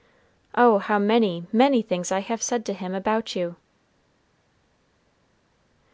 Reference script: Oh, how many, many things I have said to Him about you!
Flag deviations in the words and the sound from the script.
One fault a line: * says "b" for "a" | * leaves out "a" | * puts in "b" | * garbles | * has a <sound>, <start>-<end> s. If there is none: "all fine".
all fine